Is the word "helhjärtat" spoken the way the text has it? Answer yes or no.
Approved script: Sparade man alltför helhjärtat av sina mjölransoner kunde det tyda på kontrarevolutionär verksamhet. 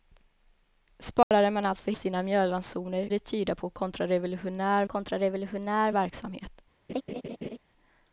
no